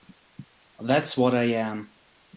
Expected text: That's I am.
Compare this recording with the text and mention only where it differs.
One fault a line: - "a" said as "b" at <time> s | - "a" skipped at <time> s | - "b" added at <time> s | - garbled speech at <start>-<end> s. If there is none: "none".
- "what" added at 1.1 s